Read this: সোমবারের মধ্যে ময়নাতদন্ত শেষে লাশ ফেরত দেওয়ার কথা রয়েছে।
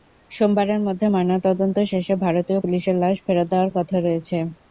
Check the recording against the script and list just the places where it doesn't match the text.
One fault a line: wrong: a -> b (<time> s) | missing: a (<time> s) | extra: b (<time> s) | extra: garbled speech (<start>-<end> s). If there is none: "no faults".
extra: ভারতীয় পুলিশের (2.2 s)